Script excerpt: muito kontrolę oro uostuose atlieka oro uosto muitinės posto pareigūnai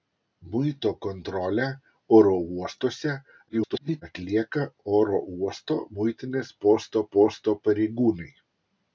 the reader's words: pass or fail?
fail